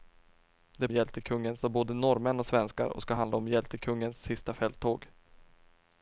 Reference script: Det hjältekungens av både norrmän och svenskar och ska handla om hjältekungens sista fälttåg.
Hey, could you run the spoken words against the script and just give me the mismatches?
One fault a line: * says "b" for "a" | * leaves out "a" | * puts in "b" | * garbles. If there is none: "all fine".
all fine